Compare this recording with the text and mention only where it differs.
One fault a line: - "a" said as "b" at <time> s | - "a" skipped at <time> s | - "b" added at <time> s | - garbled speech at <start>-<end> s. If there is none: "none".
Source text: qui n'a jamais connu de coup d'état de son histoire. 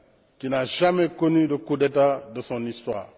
none